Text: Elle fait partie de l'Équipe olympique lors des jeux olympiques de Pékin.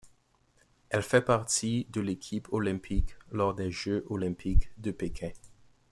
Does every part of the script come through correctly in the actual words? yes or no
yes